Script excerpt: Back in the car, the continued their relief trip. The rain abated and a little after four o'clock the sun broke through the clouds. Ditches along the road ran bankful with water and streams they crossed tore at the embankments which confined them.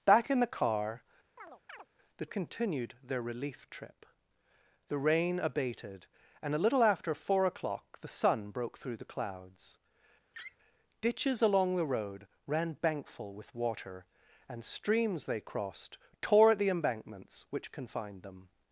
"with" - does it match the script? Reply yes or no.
yes